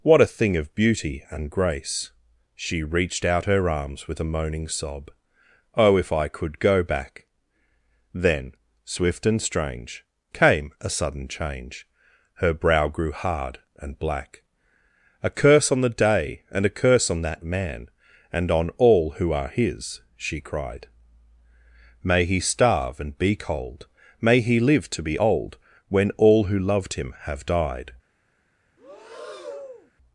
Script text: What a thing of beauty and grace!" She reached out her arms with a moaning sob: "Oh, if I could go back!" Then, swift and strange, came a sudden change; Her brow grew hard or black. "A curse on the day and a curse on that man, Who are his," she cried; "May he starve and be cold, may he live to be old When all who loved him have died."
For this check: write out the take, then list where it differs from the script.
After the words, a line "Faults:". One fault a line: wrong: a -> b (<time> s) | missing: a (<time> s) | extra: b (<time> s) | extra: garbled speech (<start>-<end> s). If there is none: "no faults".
What a thing of beauty and grace!" She reached out her arms with a moaning sob: "Oh, if I could go back!" Then, swift and strange, came a sudden change; Her brow grew hard and black. "A curse on the day and a curse on that man, And on all who are his," she cried; "May he starve and be cold, may he live to be old When all who loved him have died."
Faults:
wrong: or -> and (13.8 s)
extra: And on all (18.3 s)